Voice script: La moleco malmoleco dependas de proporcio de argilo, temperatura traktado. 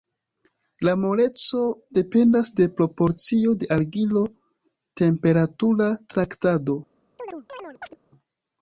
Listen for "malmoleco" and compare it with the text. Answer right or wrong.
wrong